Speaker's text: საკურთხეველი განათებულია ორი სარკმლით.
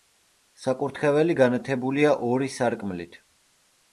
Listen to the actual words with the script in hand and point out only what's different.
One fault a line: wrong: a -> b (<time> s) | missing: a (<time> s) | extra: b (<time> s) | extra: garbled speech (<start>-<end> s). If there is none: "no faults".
no faults